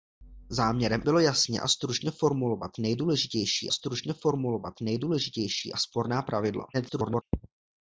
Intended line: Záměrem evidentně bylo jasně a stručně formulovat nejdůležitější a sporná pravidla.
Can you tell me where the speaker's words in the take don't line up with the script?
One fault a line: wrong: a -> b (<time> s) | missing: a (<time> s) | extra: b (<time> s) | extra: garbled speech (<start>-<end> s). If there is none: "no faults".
missing: evidentně (1.0 s)
extra: stručně formulovat nejdůležitější (3.7 s)
extra: garbled speech (6.7-7.2 s)